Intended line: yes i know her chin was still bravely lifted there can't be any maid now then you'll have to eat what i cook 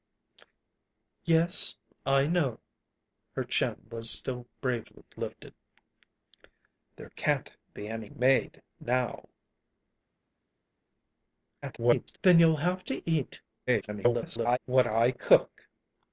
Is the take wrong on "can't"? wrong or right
right